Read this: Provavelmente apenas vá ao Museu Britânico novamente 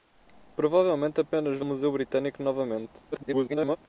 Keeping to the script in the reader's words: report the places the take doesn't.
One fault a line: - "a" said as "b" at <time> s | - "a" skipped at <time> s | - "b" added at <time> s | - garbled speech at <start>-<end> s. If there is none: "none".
- "ao" skipped at 1.7 s
- garbled speech at 3.1-3.8 s